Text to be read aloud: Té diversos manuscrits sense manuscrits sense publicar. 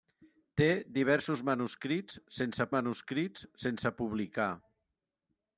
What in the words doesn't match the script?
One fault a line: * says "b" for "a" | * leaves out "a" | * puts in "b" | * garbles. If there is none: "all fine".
all fine